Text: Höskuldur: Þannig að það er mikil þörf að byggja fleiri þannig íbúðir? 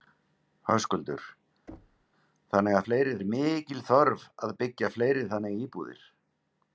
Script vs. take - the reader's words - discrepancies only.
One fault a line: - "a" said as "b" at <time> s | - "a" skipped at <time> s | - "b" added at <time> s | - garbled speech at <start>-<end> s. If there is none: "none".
- "það" said as "fleiri" at 2.9 s